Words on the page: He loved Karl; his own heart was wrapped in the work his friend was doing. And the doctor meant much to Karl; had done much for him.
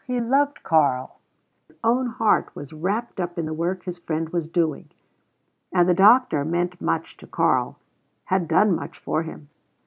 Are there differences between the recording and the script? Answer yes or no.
yes